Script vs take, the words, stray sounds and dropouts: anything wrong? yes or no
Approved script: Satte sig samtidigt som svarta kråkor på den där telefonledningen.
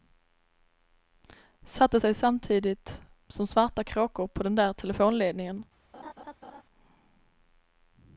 yes